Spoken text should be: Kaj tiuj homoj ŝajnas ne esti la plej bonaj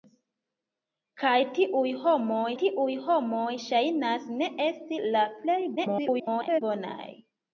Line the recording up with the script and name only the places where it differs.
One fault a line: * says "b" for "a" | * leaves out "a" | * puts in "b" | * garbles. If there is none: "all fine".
* puts in "tiuj homoj"
* garbles